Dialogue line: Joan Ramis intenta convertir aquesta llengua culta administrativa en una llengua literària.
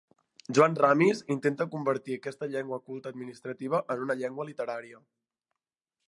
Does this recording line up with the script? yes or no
yes